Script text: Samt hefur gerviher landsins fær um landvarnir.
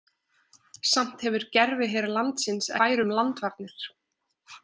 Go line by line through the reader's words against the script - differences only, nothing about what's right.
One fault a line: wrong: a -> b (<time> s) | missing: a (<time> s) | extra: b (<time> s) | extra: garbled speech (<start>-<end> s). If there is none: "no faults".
no faults